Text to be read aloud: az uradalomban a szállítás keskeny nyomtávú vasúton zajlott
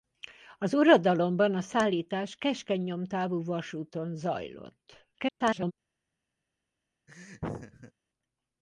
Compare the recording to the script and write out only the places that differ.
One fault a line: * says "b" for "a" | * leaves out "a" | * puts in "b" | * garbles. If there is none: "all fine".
* garbles